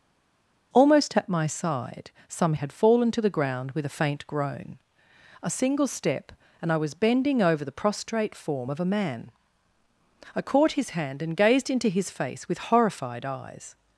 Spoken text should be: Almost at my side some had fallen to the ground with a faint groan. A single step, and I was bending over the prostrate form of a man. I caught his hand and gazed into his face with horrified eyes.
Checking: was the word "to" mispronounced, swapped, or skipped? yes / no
no